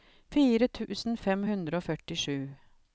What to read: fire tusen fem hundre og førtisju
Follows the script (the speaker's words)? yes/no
yes